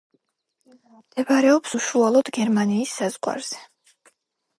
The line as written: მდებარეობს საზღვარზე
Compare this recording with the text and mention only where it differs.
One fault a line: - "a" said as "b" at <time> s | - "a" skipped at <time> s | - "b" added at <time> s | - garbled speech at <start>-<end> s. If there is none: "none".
- "უშუალოდ გერმანიის" added at 1.8 s